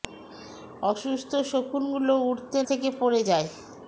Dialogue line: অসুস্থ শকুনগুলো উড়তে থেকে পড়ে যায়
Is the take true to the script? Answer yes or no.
yes